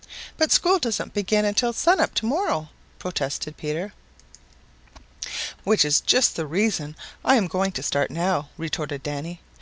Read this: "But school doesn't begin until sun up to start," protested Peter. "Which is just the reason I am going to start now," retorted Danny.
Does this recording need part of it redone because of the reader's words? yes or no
yes